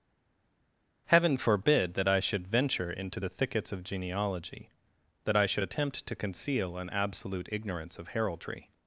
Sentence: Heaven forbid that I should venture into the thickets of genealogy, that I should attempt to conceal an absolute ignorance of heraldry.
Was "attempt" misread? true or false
false